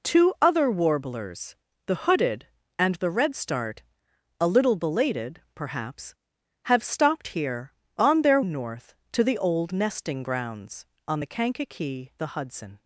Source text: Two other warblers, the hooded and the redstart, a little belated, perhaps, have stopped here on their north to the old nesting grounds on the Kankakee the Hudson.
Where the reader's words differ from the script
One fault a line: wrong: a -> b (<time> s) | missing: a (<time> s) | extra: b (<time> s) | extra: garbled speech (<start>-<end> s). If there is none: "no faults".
no faults